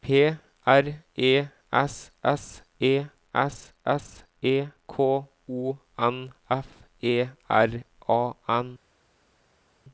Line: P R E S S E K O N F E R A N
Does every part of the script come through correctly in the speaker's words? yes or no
no